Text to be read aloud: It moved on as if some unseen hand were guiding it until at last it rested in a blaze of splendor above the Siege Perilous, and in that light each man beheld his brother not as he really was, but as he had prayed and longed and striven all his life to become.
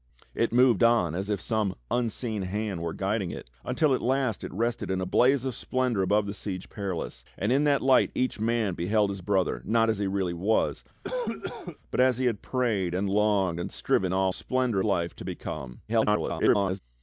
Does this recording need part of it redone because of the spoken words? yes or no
yes